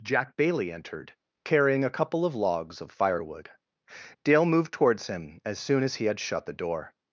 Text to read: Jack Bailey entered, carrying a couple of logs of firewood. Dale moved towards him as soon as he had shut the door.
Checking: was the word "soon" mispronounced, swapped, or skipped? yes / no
no